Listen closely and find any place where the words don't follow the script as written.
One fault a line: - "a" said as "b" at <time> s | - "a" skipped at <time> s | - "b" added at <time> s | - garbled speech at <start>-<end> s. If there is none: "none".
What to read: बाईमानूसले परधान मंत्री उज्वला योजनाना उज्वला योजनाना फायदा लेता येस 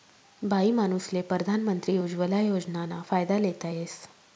- "उज्वला योजनाना" skipped at 3.0 s